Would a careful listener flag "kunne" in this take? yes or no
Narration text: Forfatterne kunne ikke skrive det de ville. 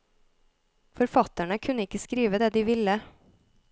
no